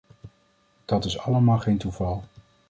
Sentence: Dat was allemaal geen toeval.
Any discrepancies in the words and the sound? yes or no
yes